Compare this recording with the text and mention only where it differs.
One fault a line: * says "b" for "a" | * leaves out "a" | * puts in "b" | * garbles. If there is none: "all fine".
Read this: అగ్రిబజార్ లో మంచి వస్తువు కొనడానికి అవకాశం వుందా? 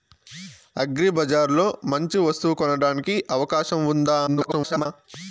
* garbles